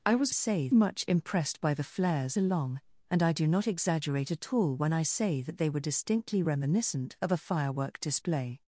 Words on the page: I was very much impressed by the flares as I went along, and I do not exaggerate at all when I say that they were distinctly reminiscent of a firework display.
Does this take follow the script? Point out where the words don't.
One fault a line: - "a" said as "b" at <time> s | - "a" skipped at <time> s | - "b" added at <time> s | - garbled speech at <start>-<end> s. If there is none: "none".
- "very" said as "say" at 0.3 s
- "as I went" skipped at 2.4 s